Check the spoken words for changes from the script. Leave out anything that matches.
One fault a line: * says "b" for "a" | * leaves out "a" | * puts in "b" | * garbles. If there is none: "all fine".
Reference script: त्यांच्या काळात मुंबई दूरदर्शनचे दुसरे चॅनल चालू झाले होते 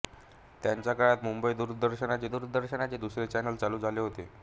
* puts in "दूरदर्शनचे"